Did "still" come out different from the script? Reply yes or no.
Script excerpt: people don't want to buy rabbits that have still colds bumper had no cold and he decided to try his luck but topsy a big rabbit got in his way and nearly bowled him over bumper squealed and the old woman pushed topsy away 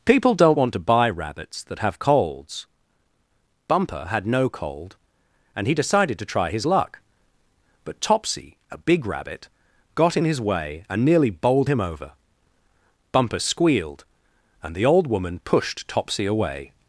yes